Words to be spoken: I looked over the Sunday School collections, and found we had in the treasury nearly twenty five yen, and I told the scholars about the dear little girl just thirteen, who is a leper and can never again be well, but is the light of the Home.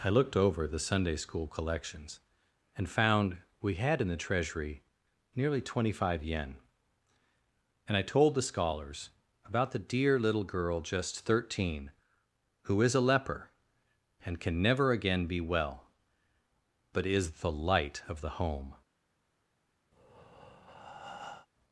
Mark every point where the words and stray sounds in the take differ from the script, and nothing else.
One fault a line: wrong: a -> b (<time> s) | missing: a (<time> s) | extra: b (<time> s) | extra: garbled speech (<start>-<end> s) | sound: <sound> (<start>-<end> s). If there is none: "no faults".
sound: breath (19.9-21.5 s)